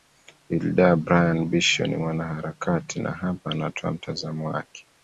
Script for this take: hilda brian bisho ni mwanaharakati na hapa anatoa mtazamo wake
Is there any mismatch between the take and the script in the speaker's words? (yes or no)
no